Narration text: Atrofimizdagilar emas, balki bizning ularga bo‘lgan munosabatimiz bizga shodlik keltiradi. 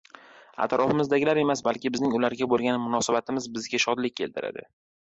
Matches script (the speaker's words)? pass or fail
pass